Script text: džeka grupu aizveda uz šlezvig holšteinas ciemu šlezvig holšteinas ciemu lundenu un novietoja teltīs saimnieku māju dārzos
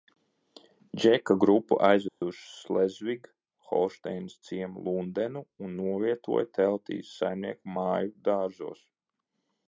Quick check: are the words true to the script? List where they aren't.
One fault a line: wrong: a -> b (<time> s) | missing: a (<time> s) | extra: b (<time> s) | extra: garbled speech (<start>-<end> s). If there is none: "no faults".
missing: šlezvig holšteinas ciemu (4.8 s)